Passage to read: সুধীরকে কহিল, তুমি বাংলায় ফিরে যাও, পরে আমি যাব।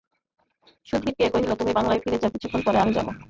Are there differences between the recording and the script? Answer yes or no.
yes